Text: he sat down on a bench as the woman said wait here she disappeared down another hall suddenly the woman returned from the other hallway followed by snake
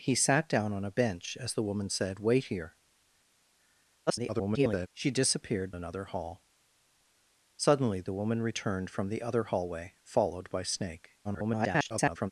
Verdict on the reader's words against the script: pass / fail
fail